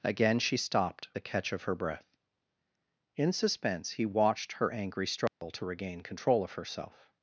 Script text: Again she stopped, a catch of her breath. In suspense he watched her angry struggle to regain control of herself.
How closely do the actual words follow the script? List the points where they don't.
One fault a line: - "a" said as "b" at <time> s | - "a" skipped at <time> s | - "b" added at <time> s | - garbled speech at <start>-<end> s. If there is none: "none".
none